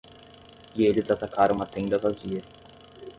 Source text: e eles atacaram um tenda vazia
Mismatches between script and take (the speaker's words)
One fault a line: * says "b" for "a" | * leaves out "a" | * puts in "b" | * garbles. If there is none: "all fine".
* says "uma" for "um"